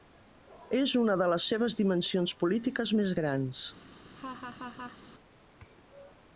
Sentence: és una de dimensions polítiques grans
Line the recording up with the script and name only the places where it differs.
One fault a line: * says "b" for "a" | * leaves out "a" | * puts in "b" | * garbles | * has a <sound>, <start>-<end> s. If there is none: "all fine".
* puts in "les seves"
* puts in "més"
* has a laugh, 4.0-5.0 s